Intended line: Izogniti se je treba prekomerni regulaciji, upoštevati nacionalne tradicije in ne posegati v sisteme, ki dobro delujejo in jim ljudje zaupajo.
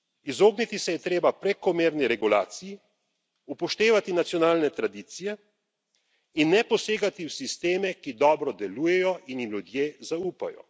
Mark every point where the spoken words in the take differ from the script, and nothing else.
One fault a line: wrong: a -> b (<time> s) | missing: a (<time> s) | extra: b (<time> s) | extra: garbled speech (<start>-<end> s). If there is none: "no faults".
no faults